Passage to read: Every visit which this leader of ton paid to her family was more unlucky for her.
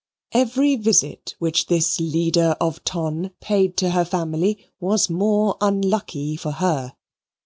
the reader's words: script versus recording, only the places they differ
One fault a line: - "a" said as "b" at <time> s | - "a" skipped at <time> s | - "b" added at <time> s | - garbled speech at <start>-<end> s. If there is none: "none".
none